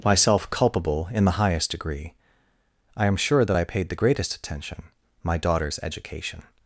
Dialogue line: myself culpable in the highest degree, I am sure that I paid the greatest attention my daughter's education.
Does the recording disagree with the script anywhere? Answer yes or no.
no